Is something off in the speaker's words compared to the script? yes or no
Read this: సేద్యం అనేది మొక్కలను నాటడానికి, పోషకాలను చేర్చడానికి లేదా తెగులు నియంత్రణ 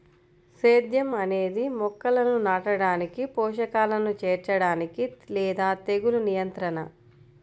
no